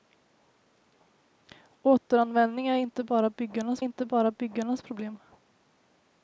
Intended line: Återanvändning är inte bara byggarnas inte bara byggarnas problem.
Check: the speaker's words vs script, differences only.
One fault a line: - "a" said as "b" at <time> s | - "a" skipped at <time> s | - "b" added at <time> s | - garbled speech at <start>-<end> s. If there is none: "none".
none